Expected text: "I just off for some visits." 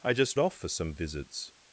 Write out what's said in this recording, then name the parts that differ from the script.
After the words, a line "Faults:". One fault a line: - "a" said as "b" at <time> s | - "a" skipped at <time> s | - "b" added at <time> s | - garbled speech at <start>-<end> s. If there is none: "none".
"I just off for some visits."
Faults:
none